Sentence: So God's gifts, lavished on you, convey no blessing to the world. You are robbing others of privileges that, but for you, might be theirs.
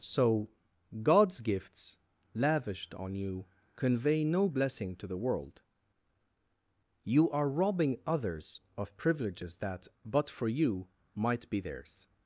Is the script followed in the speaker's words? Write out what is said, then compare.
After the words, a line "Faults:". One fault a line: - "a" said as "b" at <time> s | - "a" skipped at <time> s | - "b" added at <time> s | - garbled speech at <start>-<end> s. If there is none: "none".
So God's gifts, lavished on you, convey no blessing to the world. You are robbing others of privileges that, but for you, might be theirs.
Faults:
none